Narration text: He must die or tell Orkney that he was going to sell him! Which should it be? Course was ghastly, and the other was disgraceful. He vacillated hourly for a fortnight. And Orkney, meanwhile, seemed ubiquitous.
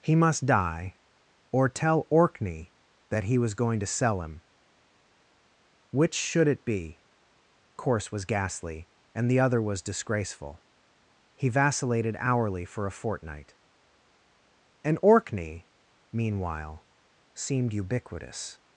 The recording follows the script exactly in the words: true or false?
true